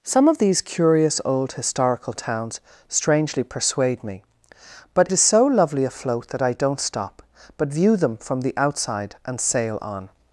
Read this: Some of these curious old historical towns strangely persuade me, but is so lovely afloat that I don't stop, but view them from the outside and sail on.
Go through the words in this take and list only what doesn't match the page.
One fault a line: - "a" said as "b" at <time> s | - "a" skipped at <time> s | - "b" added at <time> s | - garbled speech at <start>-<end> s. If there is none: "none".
none